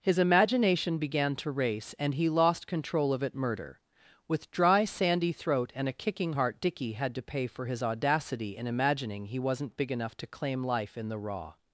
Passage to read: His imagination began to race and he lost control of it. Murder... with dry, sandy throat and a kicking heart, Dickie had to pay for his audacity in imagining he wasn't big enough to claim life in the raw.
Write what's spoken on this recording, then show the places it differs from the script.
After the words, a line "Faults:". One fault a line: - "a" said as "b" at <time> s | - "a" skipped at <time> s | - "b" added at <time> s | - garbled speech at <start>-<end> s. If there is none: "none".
His imagination began to race and he lost control of it. Murder... with dry, sandy throat and a kicking heart, Dickie had to pay for his audacity in imagining he wasn't big enough to claim life in the raw.
Faults:
none